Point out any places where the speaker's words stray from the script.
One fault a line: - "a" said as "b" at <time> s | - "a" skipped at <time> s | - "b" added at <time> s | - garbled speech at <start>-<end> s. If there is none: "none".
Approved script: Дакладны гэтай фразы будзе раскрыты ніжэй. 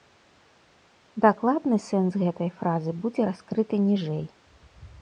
- "сэнс" added at 1.9 s